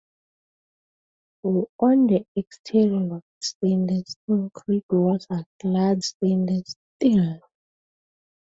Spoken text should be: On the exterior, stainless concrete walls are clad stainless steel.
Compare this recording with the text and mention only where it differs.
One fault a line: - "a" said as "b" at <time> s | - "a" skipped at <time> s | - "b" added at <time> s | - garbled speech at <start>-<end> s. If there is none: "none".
none